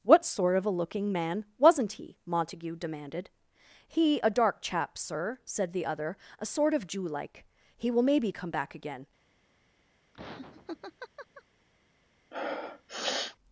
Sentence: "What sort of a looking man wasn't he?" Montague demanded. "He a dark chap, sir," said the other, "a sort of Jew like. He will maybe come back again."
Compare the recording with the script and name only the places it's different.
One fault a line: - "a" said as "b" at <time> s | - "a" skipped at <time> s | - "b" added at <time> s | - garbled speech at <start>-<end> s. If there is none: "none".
none